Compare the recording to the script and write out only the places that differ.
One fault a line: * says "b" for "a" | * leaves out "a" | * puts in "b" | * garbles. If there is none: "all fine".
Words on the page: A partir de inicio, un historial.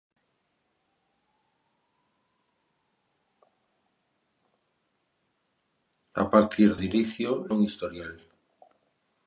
all fine